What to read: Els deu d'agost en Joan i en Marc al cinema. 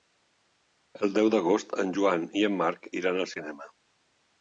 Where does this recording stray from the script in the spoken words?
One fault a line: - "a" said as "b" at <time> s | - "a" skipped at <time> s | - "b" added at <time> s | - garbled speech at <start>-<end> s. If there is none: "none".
- "Els" said as "El" at 1.0 s
- "iran" added at 3.0 s